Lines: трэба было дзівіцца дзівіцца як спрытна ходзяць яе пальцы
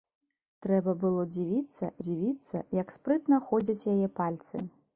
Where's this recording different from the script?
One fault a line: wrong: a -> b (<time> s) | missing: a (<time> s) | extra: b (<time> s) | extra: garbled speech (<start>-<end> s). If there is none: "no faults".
no faults